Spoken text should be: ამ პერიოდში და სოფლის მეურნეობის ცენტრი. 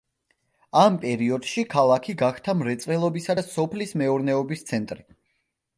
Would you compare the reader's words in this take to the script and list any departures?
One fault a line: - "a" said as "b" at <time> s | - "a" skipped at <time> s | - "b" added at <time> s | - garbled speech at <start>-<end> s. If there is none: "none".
- "ქალაქი გახდა მრეწველობისა" added at 1.7 s